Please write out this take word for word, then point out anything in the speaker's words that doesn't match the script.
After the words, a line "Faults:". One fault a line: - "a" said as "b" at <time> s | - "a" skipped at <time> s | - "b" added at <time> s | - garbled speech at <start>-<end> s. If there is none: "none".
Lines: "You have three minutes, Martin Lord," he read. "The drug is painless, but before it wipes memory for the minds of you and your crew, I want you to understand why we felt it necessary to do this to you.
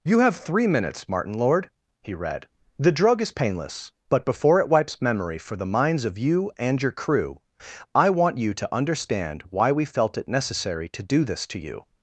"You have three minutes, Martin Lord," he read. "The drug is painless, but before it wipes memory for the minds of you and your crew, I want you to understand why we felt it necessary to do this to you.
Faults:
none